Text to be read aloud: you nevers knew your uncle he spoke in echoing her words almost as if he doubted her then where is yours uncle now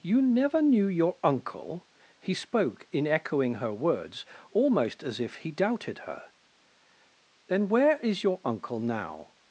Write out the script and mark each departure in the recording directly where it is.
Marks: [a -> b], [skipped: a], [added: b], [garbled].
you [nevers -> never] knew your uncle he spoke in echoing her words almost as if he doubted her then where is [yours -> your] uncle now